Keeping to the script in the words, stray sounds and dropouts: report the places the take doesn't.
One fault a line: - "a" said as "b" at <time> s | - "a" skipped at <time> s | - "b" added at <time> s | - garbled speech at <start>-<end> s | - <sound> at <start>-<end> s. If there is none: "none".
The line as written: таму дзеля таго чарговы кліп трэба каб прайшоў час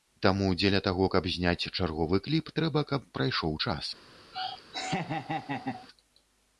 - "каб зняць" added at 1.1 s
- laugh at 4.3-5.9 s